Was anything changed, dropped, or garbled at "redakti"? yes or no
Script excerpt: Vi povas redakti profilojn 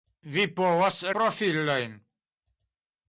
yes